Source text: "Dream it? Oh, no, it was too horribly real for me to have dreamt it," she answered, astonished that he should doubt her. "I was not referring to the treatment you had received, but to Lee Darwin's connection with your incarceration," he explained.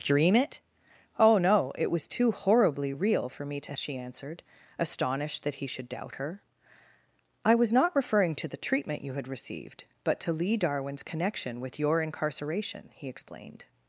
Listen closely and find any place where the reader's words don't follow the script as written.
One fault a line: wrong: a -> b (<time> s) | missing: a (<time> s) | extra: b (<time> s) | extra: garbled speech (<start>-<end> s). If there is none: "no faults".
missing: have dreamt it (3.7 s)